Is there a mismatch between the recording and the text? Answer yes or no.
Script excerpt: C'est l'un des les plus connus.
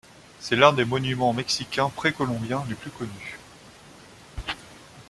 yes